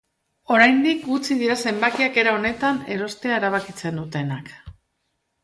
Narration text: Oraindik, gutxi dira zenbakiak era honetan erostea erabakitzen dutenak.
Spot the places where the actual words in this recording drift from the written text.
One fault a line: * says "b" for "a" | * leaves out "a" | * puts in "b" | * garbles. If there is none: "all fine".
all fine